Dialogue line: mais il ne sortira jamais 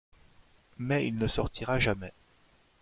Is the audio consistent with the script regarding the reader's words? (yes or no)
yes